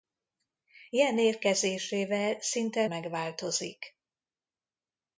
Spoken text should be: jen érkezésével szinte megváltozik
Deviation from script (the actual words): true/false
false